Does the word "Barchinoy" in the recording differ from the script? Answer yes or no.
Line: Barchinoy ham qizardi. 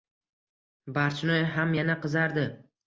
no